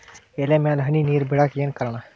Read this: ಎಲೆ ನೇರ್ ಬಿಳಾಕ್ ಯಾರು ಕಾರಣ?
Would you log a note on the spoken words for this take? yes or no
yes